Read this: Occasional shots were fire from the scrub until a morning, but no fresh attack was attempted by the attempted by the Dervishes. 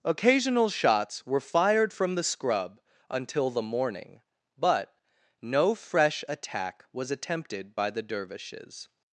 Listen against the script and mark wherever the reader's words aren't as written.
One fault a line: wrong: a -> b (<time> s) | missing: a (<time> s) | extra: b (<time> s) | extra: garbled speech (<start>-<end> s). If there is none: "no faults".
wrong: fire -> fired (1.4 s)
wrong: a -> the (3.5 s)
missing: attempted by the (8.0 s)